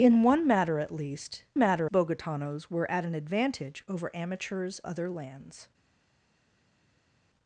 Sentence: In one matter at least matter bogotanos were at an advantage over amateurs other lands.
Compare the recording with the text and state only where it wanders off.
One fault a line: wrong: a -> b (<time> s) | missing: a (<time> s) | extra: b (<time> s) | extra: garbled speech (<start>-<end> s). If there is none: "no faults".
no faults